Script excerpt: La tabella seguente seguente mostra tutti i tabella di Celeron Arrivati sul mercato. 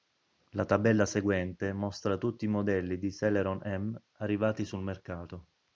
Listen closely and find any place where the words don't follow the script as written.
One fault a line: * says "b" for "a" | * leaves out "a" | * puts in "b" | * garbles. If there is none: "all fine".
* leaves out "seguente"
* says "modelli" for "tabella"
* puts in "M"